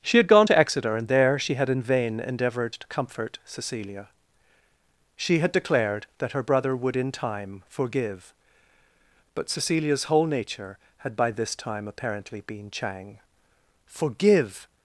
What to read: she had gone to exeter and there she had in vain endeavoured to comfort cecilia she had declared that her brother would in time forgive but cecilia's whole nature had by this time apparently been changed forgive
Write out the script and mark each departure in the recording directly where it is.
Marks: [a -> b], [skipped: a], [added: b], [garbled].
she had gone to exeter and there she had in vain endeavoured to comfort cecilia she had declared that her brother would in time forgive but cecilia's whole nature had by this time apparently been [changed -> chang] forgive